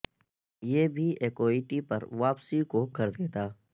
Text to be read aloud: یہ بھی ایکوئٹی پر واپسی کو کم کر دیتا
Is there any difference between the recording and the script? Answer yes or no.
yes